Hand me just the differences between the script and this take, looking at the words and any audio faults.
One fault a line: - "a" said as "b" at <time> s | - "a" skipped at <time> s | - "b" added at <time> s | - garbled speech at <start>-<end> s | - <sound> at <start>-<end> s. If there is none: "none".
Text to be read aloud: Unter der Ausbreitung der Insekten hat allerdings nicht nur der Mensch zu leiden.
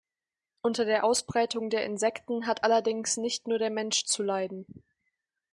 none